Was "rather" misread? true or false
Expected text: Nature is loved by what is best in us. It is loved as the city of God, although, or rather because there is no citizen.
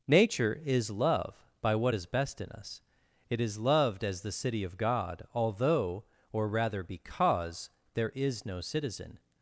false